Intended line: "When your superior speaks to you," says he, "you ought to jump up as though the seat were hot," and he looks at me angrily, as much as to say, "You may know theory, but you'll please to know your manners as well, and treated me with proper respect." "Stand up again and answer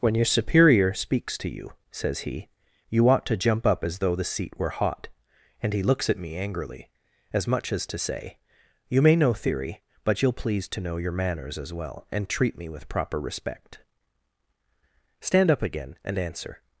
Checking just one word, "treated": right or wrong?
wrong